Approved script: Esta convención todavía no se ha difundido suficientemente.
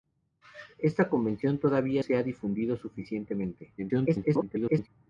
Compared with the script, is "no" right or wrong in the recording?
wrong